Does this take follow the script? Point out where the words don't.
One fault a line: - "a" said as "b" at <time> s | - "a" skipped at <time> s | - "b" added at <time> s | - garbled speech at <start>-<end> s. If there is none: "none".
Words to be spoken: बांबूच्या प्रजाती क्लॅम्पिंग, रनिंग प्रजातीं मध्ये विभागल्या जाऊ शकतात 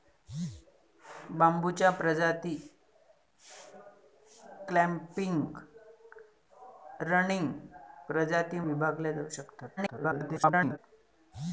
- "मध्ये" skipped at 8.6 s
- garbled speech at 9.8-10.8 s